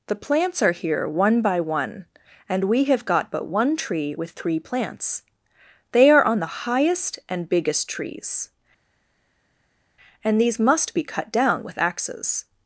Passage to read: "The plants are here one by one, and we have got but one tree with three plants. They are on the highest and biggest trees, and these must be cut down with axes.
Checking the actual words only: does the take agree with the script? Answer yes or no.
yes